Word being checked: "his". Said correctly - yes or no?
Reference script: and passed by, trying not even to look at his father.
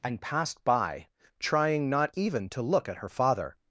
no